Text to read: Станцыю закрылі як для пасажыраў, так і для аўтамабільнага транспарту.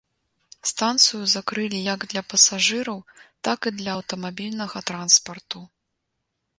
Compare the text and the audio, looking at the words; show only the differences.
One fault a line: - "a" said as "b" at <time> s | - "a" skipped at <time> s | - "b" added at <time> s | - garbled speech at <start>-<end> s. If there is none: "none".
none